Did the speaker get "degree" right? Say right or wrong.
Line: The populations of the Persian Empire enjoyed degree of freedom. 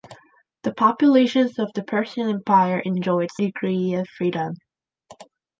right